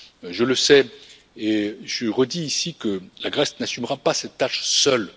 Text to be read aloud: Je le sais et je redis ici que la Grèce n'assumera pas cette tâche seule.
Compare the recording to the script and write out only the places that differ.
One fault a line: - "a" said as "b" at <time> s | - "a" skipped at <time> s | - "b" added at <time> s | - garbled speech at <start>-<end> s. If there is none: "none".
none